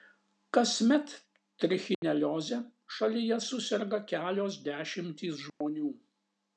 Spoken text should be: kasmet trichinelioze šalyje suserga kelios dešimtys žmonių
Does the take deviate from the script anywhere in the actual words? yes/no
no